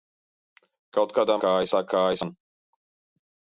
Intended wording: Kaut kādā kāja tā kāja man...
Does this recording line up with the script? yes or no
yes